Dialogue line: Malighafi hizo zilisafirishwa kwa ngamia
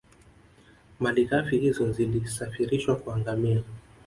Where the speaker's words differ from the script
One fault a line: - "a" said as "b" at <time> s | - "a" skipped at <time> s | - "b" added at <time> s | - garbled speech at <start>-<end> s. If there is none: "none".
none